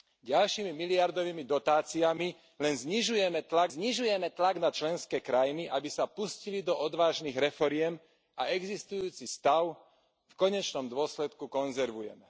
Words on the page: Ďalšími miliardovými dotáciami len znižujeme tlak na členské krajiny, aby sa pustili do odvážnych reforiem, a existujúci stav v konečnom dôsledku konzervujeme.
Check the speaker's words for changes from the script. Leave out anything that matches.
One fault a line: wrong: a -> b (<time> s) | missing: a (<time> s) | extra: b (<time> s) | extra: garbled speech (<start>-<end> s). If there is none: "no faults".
extra: znižujeme tlak (3.7 s)